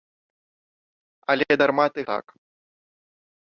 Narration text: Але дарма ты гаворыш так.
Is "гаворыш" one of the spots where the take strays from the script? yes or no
yes